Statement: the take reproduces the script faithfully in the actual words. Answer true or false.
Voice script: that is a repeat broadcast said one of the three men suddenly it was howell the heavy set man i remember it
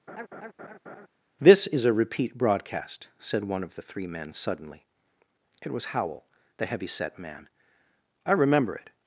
false